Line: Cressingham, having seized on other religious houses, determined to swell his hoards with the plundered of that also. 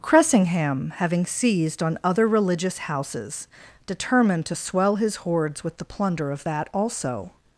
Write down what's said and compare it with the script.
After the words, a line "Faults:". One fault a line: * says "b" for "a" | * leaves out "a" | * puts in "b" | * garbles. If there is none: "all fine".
Cressingham, having seized on other religious houses, determined to swell his hoards with the plunder of that also.
Faults:
* says "plunder" for "plundered"